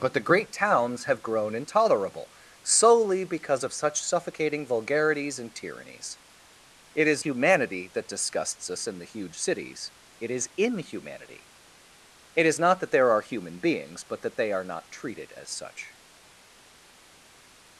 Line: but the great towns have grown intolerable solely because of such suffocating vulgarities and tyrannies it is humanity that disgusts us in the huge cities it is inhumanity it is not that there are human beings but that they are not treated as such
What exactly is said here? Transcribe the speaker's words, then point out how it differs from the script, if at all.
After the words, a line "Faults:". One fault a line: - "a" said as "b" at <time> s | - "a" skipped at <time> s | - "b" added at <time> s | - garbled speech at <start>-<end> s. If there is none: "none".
but the great towns have grown intolerable solely because of such suffocating vulgarities and tyrannies it is humanity that disgusts us in the huge cities it is inhumanity it is not that there are human beings but that they are not treated as such
Faults:
none